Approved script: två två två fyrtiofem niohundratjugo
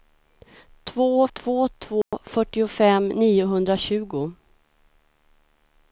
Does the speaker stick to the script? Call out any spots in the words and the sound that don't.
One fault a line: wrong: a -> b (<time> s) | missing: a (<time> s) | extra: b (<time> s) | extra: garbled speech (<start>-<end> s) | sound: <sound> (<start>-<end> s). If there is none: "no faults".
sound: dropout (2.0-2.1 s)